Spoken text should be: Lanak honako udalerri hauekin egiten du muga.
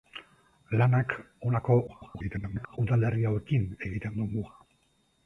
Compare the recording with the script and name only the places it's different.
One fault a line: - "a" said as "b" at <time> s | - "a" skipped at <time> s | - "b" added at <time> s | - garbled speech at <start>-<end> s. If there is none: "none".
- garbled speech at 1.9-2.8 s